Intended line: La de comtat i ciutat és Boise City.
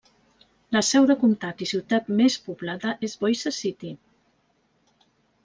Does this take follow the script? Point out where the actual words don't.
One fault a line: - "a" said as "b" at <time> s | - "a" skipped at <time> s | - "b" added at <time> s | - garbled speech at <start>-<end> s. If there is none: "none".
- "seu" added at 0.8 s
- "més poblada" added at 2.2 s